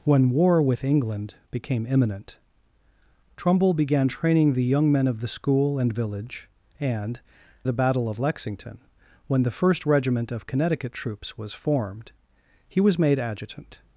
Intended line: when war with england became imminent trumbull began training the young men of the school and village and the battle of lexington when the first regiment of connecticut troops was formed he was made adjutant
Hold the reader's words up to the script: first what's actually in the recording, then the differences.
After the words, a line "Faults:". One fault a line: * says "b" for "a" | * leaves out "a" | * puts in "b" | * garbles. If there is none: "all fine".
when war with england became imminent trumbull began training the young men of the school and village and the battle of lexington when the first regiment of connecticut troops was formed he was made adjutant
Faults:
all fine